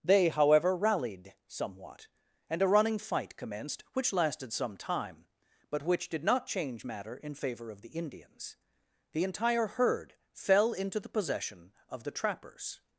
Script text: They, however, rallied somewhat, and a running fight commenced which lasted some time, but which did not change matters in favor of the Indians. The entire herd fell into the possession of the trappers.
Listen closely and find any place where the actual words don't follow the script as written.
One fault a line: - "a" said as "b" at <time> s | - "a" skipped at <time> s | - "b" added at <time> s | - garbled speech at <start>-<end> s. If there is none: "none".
- "matters" said as "matter" at 6.8 s